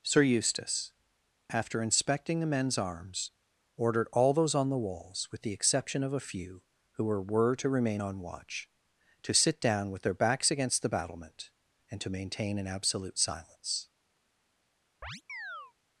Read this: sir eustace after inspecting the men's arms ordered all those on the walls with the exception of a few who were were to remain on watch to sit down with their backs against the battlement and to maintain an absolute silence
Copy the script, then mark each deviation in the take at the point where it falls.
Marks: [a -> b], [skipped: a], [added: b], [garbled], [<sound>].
sir eustace after inspecting the men's arms ordered all those on the walls with the exception of a few who were were to remain on watch to sit down with their backs against the battlement and to maintain an absolute silence [chirp]